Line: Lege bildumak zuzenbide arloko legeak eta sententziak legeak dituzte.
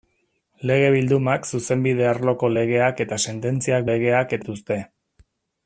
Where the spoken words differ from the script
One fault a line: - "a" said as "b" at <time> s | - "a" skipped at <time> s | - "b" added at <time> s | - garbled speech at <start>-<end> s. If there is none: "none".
none